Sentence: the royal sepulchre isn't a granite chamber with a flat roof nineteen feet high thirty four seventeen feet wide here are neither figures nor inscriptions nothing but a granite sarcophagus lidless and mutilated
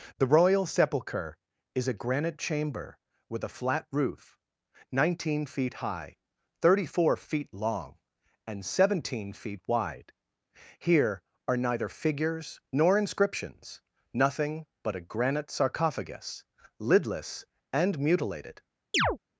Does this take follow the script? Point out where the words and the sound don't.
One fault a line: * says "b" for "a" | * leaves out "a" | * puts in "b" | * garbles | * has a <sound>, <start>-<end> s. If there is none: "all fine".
* says "is" for "isn't"
* puts in "feet long and"
* has a chirp, 18.9-19.2 s